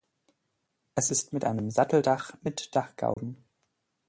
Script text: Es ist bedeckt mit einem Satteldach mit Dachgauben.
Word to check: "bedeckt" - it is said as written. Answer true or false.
false